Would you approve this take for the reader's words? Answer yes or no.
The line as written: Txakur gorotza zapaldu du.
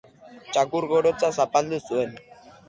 no